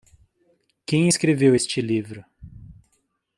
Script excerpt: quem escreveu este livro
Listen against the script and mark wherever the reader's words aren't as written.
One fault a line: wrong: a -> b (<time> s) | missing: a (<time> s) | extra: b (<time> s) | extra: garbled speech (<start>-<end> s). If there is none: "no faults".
no faults